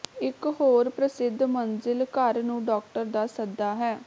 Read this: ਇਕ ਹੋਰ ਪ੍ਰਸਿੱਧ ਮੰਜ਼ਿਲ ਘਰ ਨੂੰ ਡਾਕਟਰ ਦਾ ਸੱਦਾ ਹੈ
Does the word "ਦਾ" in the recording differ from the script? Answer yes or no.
no